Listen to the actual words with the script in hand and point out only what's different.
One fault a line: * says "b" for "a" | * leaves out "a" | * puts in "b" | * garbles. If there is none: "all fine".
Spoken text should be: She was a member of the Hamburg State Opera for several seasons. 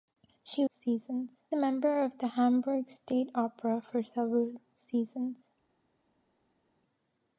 * says "seasons" for "was"